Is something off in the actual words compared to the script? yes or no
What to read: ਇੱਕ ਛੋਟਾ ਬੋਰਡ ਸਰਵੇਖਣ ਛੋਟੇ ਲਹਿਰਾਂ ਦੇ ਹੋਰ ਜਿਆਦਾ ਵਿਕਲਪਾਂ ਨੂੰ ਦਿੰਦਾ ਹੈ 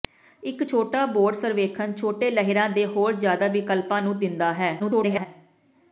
yes